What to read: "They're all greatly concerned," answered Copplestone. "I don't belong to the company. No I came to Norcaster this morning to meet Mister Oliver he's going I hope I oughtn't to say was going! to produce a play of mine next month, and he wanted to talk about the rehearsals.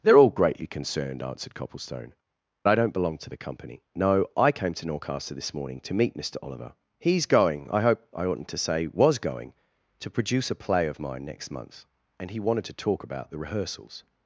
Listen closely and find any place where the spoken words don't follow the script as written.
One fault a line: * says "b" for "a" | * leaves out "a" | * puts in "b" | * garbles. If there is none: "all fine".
all fine